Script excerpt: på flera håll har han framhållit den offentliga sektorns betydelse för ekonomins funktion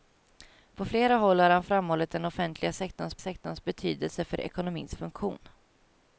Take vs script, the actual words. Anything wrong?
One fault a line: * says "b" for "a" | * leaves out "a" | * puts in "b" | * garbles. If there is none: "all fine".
* puts in "sektorns"